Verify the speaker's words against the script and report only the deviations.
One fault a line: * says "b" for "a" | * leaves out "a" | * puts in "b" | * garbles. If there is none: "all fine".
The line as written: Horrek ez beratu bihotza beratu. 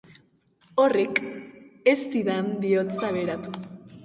* says "zidan" for "beratu"